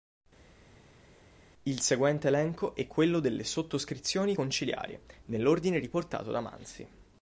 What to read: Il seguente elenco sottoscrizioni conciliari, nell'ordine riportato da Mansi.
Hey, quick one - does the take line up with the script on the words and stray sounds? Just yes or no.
no